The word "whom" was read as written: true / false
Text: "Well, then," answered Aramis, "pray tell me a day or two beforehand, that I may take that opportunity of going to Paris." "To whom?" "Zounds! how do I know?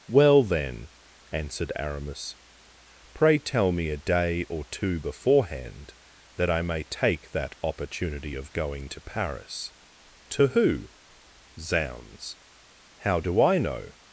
false